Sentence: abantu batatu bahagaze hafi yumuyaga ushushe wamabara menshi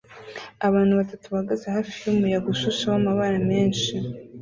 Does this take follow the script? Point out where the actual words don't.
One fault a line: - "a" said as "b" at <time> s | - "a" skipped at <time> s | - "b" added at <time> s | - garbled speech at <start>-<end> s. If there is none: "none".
none